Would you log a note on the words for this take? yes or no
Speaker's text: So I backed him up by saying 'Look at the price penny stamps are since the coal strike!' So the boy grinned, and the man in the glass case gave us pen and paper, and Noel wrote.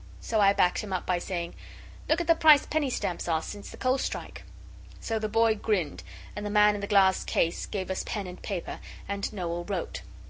no